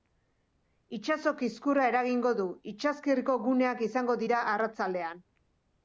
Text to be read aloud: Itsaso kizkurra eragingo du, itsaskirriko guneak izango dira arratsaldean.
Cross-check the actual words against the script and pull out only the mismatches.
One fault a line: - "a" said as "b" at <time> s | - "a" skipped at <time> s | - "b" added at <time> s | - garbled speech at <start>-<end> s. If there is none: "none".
none